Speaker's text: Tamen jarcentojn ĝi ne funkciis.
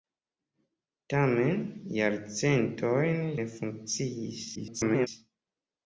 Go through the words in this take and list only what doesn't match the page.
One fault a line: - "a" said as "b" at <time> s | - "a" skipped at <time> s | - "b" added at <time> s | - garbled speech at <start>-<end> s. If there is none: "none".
- "ĝi" skipped at 3.2 s
- garbled speech at 4.5-5.1 s